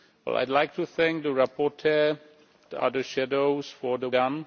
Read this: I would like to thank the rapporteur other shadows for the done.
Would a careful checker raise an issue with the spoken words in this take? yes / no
no